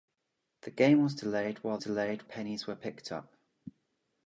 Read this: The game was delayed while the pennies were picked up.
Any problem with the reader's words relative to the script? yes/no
yes